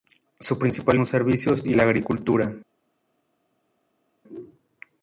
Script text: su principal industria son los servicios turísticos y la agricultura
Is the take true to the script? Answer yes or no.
no